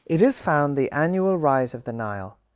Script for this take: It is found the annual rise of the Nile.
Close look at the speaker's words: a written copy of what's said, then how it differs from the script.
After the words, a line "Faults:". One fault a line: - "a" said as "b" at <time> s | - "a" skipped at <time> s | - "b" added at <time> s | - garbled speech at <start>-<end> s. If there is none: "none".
It is found the annual rise of the Nile.
Faults:
none